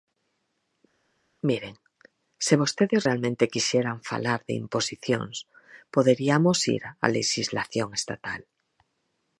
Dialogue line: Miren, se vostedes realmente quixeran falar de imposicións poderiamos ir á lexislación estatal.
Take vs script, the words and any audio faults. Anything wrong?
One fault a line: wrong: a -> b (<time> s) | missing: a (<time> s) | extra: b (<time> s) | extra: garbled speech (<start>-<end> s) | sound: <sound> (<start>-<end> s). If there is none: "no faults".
no faults